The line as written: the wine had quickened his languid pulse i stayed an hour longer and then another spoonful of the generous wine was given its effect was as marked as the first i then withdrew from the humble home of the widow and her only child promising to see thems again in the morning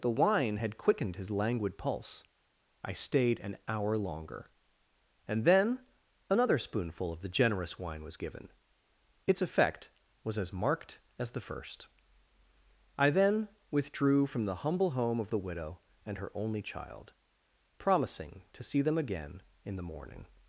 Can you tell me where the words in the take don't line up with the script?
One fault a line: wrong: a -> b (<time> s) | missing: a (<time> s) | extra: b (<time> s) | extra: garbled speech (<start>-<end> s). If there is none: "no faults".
wrong: thems -> them (18.8 s)